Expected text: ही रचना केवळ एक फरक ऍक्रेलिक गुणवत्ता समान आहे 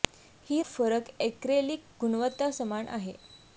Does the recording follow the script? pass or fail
fail